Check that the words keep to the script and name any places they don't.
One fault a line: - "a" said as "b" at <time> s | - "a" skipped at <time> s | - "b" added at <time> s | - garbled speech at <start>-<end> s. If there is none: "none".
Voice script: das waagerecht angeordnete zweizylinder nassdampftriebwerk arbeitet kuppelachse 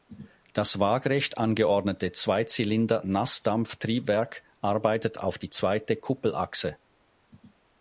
- "auf die zweite" added at 5.2 s